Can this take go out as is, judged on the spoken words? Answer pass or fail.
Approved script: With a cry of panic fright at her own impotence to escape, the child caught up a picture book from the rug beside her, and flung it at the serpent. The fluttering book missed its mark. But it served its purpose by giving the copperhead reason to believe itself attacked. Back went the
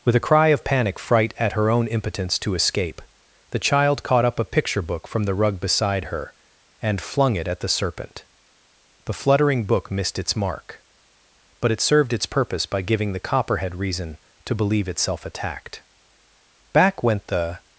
pass